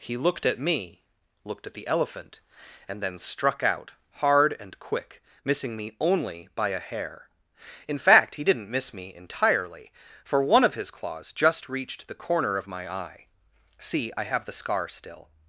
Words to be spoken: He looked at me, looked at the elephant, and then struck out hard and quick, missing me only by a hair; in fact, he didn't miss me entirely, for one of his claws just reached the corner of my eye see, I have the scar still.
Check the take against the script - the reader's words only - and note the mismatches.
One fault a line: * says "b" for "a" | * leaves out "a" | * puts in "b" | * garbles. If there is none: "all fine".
all fine